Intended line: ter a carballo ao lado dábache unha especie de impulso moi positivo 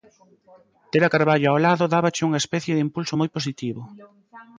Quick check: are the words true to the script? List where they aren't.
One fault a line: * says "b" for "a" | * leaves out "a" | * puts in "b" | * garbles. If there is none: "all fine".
all fine